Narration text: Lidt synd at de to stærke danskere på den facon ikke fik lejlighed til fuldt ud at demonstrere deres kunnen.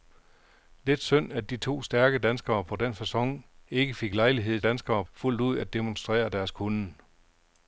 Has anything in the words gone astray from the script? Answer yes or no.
yes